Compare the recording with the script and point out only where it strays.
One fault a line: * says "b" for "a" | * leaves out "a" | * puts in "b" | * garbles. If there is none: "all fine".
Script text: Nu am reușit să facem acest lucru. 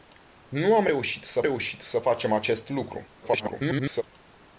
* puts in "reușit să"
* garbles